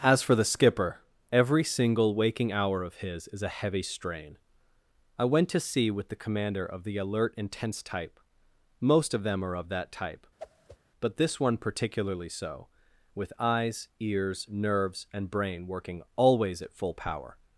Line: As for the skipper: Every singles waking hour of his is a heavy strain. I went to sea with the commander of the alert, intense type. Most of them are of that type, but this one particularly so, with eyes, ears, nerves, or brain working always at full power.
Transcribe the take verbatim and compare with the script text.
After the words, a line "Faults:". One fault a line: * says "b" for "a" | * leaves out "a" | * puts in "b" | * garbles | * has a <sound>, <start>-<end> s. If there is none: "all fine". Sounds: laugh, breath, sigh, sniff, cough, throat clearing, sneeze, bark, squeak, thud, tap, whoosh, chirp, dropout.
As for the skipper: Every single waking hour of his is a heavy strain. I went to sea with the commander of the alert, intense type. Most of them are of that type, but this one particularly so, with eyes, ears, nerves, and brain working always at full power.
Faults:
* says "single" for "singles"
* has a whoosh, 10.4-10.8 s
* says "and" for "or"